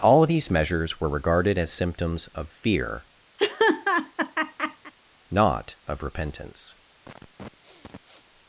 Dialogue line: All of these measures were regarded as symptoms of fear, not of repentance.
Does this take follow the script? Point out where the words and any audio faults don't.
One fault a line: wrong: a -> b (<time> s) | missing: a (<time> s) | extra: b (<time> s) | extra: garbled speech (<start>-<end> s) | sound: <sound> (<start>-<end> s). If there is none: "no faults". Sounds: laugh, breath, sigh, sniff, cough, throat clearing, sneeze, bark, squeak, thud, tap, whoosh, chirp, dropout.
sound: laugh (3.4-4.9 s)
sound: sniff (7.0-8.3 s)